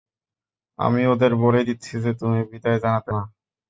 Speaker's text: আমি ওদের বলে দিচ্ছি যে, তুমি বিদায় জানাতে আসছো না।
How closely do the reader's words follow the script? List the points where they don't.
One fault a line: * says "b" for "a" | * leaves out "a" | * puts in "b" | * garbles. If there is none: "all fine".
* leaves out "আসছো"